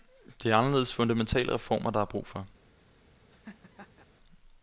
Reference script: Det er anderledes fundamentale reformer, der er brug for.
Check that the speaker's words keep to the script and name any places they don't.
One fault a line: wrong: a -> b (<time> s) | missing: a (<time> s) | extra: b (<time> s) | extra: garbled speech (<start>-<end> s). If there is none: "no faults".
no faults